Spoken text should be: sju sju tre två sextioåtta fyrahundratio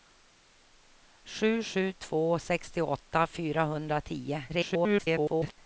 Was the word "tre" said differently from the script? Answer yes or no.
yes